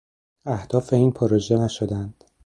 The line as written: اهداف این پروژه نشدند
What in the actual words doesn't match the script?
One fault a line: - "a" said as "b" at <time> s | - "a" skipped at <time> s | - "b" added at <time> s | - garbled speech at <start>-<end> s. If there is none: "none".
none